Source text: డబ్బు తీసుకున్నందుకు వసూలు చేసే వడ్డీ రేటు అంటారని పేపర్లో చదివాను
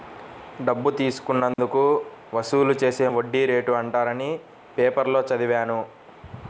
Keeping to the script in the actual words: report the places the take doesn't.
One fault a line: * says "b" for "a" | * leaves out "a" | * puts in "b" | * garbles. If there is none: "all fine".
all fine